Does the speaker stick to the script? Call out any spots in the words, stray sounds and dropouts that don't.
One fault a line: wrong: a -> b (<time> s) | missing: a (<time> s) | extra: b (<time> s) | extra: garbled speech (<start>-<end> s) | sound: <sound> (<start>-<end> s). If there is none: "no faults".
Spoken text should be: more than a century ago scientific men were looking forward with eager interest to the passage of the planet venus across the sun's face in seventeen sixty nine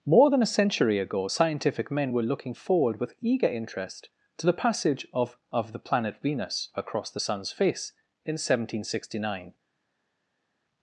extra: of (5.5 s)